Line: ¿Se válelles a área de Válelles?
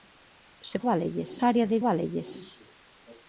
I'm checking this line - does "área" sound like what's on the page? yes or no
yes